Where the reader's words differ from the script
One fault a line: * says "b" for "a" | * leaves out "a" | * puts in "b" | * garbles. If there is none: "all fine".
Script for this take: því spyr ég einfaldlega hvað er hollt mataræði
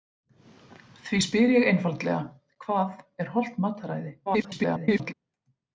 * garbles